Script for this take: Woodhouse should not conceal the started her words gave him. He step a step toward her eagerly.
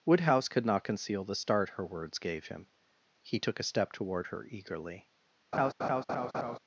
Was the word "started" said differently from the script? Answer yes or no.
yes